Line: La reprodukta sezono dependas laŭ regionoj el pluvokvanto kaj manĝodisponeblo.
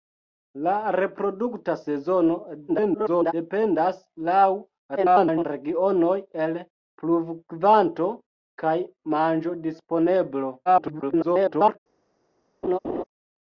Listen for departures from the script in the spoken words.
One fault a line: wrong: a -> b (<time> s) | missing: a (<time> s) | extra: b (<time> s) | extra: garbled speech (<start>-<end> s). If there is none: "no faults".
extra: garbled speech (2.7-3.3 s)
extra: garbled speech (5.0-5.4 s)
extra: garbled speech (10.7-11.8 s)